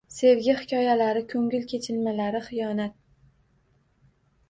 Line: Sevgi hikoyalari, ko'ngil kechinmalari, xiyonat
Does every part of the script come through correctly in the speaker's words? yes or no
yes